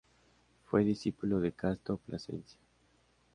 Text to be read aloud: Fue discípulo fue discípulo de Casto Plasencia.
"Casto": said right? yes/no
yes